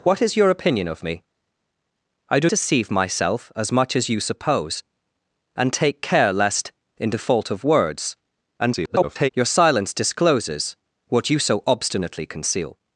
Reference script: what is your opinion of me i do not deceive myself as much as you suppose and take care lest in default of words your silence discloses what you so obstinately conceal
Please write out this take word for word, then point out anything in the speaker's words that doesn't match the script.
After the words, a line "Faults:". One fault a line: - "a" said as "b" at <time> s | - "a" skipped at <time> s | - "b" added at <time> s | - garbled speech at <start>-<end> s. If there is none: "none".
what is your opinion of me i do deceive myself as much as you suppose and take care lest in default of words [garbled] your silence discloses what you so obstinately conceal
Faults:
- "not" skipped at 2.5 s
- garbled speech at 8.6-9.3 s